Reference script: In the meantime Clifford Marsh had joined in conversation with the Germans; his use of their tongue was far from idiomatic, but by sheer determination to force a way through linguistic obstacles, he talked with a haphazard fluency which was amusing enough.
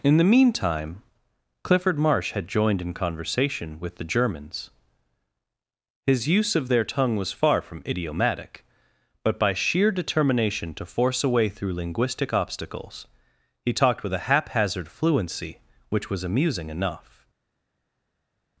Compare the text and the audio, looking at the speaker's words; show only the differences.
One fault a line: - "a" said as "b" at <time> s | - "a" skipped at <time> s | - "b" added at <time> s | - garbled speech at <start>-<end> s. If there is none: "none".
none